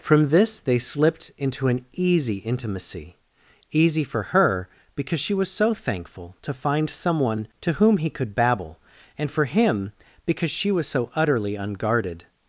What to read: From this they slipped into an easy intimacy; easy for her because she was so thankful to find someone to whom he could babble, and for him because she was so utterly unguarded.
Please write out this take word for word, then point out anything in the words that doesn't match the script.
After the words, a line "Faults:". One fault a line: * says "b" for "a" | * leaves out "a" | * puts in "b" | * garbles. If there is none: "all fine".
From this they slipped into an easy intimacy; easy for her because she was so thankful to find someone to whom he could babble, and for him because she was so utterly unguarded.
Faults:
all fine